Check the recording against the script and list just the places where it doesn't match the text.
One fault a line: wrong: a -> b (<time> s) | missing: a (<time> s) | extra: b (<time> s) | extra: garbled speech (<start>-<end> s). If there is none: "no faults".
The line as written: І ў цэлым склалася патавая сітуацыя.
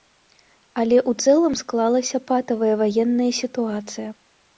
wrong: І -> Але (0.8 s)
extra: ваенная (2.8 s)